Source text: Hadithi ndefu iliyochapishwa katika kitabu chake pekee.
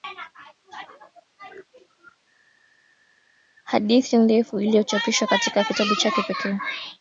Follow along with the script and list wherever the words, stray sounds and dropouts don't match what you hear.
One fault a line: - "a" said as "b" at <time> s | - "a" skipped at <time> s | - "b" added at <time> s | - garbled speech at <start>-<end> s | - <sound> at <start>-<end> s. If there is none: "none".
none